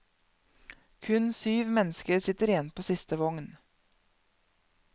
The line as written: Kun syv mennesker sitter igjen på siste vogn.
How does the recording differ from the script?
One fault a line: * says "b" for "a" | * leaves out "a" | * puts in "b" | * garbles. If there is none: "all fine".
all fine